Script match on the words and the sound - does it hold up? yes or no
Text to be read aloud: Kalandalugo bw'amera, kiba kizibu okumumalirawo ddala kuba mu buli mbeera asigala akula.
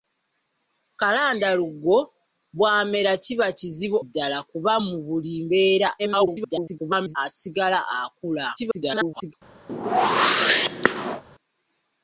no